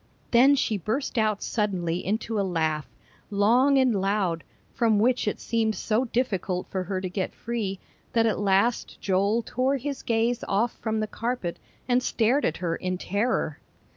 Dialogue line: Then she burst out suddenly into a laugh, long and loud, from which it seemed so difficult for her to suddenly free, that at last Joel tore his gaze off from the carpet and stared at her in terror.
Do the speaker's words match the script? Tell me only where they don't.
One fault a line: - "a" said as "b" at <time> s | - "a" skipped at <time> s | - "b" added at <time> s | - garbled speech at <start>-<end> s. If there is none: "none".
- "suddenly" said as "get" at 7.1 s